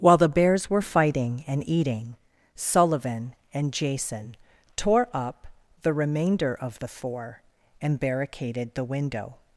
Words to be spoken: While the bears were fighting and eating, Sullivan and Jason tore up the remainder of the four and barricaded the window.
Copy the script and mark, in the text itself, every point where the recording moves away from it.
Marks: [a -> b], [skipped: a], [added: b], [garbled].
While the bears were fighting and eating, Sullivan and Jason tore up the remainder of the four and barricaded the window.